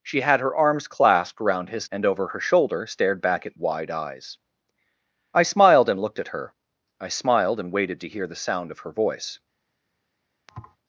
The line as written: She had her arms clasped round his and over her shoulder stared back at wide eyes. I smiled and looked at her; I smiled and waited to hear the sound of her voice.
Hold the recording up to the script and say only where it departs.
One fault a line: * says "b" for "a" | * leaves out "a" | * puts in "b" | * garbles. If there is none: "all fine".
all fine